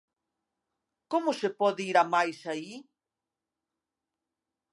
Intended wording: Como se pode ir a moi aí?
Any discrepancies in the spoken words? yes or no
yes